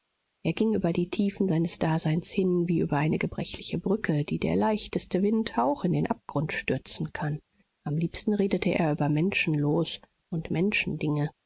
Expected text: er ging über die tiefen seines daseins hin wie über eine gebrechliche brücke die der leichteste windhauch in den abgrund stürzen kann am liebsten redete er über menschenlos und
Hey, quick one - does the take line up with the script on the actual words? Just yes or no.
yes